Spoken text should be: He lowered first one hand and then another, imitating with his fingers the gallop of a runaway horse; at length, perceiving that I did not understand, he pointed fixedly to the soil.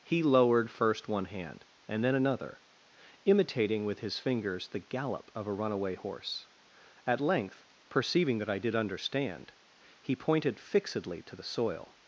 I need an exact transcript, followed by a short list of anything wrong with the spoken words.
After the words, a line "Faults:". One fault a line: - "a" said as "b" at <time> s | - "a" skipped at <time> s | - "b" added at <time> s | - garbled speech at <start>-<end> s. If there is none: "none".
He lowered first one hand and then another, imitating with his fingers the gallop of a runaway horse; at length, perceiving that I did understand, he pointed fixedly to the soil.
Faults:
- "not" skipped at 8.7 s